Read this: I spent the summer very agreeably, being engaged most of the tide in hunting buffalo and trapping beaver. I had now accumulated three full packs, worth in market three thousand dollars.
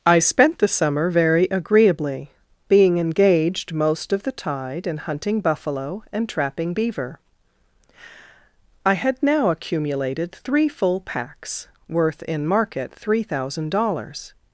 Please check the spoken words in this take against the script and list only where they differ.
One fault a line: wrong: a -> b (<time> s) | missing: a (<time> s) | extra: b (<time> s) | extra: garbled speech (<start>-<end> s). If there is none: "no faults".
no faults